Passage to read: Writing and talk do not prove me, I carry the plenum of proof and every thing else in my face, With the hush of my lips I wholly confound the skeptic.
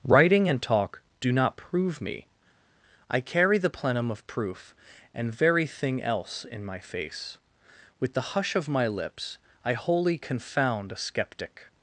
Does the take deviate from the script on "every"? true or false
true